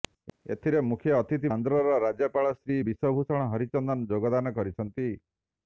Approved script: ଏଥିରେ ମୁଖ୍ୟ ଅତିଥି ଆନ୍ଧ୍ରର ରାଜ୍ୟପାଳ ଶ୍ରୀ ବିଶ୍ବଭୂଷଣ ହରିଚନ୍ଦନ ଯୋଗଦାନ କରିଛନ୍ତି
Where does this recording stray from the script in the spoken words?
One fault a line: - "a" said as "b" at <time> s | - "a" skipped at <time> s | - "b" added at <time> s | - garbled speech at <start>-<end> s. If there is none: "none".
none